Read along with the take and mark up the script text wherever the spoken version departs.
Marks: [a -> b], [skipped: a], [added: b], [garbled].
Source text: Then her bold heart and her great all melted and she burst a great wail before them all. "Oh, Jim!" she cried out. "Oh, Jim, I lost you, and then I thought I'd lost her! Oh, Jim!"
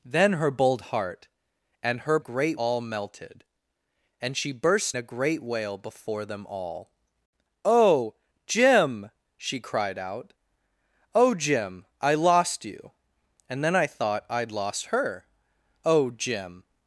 Then her bold heart and her great all melted and she burst a great wail before them all. "Oh, Jim!" she cried out. "Oh, Jim, I lost you, and then I thought I'd lost her! Oh, Jim!"